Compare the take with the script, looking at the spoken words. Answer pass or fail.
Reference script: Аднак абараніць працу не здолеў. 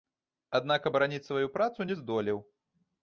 fail